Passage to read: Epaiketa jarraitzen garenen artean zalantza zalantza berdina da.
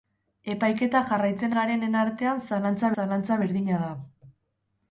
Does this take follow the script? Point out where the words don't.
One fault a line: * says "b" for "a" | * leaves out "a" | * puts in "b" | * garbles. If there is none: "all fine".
all fine